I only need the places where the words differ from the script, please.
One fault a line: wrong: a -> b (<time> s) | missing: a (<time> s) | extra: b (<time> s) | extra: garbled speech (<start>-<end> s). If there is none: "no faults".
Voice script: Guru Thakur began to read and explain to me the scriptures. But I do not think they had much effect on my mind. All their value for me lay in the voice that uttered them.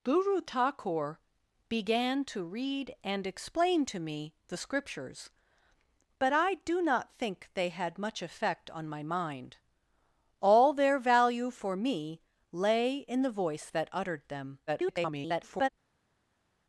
extra: garbled speech (14.7-15.7 s)